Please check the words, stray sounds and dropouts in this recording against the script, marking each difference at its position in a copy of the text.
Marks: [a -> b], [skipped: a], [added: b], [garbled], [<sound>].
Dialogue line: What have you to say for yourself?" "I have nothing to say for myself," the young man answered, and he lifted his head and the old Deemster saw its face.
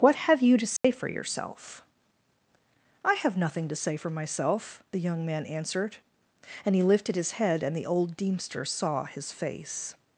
What have you to say [dropout] for yourself?" "I have nothing to say for myself," the young man answered, and he lifted his head and the old Deemster saw [its -> his] face.